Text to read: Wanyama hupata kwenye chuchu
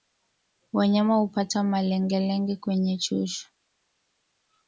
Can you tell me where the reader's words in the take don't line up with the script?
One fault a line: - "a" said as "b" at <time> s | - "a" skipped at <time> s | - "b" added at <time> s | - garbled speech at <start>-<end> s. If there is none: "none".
- "malengelenge" added at 1.6 s